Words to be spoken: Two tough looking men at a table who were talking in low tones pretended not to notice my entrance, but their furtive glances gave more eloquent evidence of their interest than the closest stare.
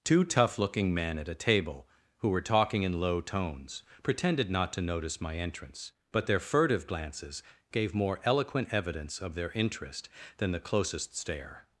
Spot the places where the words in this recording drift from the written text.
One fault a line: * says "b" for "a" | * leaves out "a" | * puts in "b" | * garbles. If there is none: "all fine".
all fine